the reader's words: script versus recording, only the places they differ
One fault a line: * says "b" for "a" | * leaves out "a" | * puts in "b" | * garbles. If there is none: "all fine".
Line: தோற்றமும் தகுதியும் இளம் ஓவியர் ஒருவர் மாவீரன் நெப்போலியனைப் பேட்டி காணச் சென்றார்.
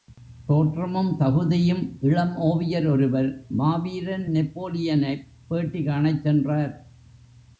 all fine